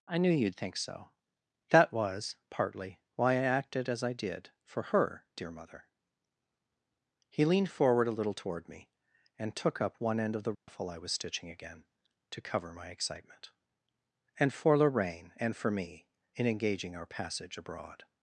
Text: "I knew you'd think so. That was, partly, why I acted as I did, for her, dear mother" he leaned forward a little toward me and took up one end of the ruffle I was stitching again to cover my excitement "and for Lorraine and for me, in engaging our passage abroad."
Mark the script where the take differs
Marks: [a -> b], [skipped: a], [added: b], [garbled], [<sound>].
"I knew you'd think so. That was, partly, why I acted as I did, for her, dear mother" he leaned forward a little toward me and took up one end of the ruffle [dropout] I was stitching again to cover my excitement "and for Lorraine and for me, in engaging our passage abroad."